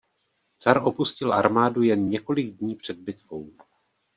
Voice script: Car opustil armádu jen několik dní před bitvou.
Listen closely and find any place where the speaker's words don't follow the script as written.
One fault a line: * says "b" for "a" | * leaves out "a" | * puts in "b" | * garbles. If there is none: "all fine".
all fine